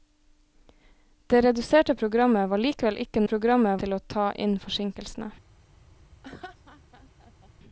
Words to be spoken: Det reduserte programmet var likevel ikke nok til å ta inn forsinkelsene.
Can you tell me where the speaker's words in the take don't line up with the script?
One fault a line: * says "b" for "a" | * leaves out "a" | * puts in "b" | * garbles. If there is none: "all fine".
* says "programmet" for "nok"